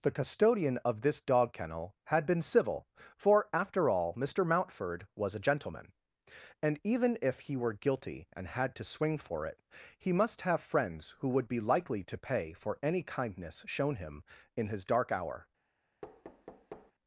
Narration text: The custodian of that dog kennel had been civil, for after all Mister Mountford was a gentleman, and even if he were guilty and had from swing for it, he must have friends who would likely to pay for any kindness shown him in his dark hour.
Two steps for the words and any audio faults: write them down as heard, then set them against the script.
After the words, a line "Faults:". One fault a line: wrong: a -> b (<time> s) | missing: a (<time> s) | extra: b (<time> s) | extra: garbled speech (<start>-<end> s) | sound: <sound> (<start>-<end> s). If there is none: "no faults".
The custodian of this dog kennel had been civil, for after all Mister Mountford was a gentleman, and even if he were guilty and had to swing for it, he must have friends who would be likely to pay for any kindness shown him in his dark hour.
Faults:
wrong: that -> this (1.0 s)
wrong: from -> to (8.8 s)
extra: be (11.5 s)
sound: thud (16.0-16.9 s)